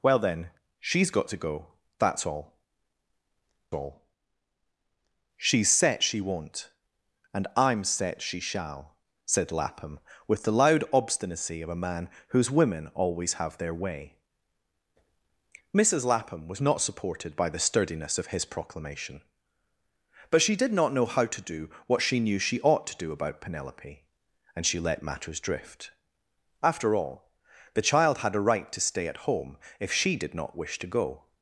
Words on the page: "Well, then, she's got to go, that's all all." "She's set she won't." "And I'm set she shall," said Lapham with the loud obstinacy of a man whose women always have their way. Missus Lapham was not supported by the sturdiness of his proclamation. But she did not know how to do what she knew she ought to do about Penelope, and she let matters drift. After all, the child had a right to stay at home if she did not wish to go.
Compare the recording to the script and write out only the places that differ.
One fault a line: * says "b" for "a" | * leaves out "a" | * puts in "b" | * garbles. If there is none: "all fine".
all fine